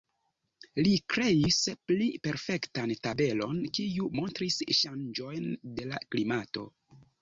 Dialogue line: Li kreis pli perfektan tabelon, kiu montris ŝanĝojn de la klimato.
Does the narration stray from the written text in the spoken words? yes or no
no